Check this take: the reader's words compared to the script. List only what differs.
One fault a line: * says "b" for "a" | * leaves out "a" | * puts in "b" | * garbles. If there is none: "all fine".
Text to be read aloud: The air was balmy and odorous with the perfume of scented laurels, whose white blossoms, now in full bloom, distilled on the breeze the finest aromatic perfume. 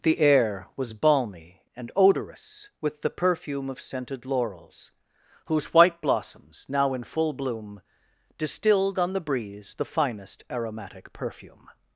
all fine